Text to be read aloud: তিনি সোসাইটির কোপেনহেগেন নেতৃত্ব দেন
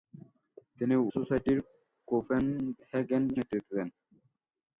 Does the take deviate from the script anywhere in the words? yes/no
no